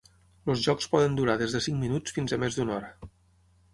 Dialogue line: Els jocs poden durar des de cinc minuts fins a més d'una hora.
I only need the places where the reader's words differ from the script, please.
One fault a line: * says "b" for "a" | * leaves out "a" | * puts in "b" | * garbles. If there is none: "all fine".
all fine